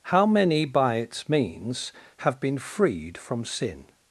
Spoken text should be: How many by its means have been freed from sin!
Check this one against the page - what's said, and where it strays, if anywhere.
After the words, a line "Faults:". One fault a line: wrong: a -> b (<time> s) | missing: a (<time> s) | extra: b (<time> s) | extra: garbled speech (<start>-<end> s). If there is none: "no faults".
How many by its means have been freed from sin!
Faults:
no faults